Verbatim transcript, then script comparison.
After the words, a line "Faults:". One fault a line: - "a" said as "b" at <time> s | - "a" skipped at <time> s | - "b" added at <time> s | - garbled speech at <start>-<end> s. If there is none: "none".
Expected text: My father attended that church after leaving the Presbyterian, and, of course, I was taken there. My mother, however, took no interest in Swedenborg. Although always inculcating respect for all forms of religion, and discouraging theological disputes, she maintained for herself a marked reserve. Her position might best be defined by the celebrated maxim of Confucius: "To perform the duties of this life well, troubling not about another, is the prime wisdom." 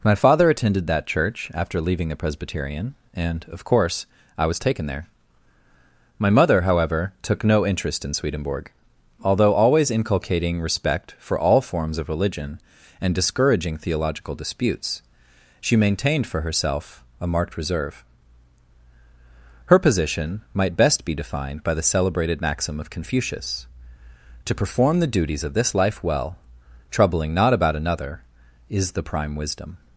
My father attended that church after leaving the Presbyterian, and, of course, I was taken there. My mother, however, took no interest in Swedenborg. Although always inculcating respect for all forms of religion, and discouraging theological disputes, she maintained for herself a marked reserve. Her position might best be defined by the celebrated maxim of Confucius: "To perform the duties of this life well, troubling not about another, is the prime wisdom."
Faults:
none